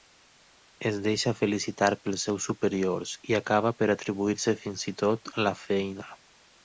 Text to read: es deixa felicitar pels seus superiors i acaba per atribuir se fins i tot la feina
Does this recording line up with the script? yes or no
yes